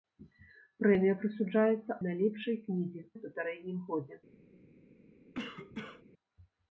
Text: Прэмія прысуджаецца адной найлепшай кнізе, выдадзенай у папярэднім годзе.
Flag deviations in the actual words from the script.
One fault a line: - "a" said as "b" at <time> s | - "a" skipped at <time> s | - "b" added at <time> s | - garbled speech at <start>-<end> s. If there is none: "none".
- "адной" skipped at 2.0 s
- "выдадзенай" skipped at 3.0 s